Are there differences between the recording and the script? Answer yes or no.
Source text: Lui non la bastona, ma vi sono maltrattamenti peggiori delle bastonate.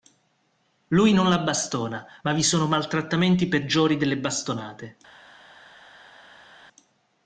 no